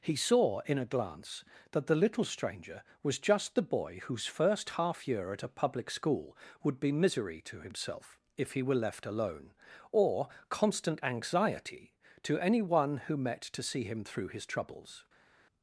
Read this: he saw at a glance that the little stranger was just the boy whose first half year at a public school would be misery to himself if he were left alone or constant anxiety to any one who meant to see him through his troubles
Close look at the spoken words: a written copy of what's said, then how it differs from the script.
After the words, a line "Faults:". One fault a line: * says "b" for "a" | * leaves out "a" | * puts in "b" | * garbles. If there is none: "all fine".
he saw in a glance that the little stranger was just the boy whose first half year at a public school would be misery to himself if he were left alone or constant anxiety to any one who met to see him through his troubles
Faults:
* says "in" for "at"
* says "met" for "meant"